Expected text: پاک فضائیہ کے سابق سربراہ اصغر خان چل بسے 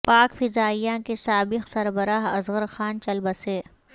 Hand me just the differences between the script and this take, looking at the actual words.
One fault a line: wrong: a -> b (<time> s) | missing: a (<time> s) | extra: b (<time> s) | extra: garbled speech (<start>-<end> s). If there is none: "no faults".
no faults